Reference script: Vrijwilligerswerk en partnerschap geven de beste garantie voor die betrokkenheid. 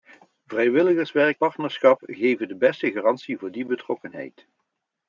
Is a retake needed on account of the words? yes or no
yes